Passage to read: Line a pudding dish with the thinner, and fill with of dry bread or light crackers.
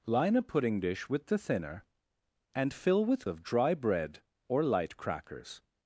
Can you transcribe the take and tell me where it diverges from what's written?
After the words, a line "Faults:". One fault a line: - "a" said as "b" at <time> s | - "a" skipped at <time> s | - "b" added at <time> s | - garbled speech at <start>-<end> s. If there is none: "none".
Line a pudding dish with the thinner, and fill with of dry bread or light crackers.
Faults:
none